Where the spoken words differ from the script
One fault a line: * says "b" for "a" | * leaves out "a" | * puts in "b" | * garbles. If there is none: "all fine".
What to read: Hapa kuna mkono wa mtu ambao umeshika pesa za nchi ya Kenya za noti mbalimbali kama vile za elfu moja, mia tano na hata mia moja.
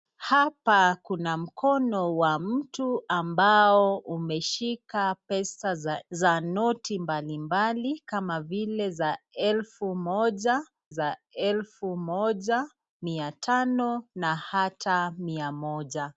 * leaves out "nchi ya Kenya"
* puts in "za elfu moja"